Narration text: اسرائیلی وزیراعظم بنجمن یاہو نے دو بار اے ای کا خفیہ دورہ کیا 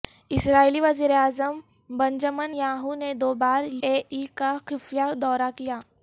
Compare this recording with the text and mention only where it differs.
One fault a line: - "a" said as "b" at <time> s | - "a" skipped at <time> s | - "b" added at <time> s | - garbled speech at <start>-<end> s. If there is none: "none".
none